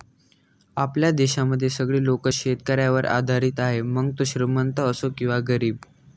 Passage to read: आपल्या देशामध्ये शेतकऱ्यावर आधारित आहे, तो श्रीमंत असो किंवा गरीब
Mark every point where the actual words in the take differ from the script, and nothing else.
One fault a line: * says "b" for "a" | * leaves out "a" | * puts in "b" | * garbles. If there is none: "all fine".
* puts in "सगळे लोक"
* puts in "मग"